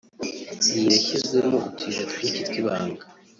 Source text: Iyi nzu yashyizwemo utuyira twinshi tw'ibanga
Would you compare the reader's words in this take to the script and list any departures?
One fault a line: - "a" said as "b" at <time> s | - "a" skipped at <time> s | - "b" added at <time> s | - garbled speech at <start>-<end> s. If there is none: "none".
- "nzu" skipped at 0.9 s